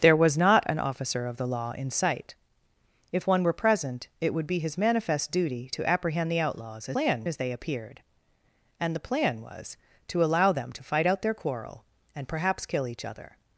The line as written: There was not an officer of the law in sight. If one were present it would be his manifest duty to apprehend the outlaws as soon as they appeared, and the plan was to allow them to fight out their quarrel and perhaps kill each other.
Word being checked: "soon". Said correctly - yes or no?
no